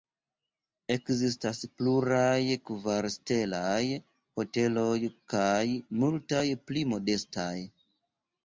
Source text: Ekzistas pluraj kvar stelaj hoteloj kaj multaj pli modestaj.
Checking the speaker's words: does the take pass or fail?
pass